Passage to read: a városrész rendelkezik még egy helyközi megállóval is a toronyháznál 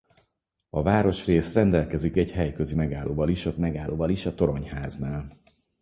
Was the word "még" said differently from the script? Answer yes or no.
yes